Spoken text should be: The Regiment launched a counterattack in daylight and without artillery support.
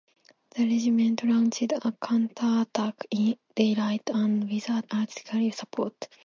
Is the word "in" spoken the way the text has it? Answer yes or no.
yes